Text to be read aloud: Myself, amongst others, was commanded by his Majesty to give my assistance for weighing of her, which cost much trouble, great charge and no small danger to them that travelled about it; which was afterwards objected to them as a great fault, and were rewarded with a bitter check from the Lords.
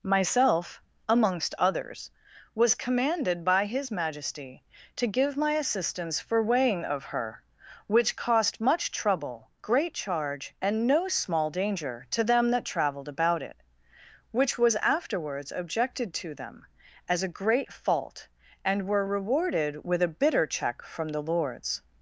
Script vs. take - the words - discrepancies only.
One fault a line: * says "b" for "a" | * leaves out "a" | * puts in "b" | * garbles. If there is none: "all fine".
all fine